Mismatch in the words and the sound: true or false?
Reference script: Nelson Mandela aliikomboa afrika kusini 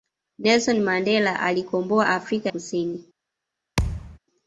true